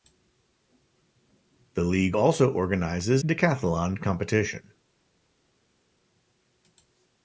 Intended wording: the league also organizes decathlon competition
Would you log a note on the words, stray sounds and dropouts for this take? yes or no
no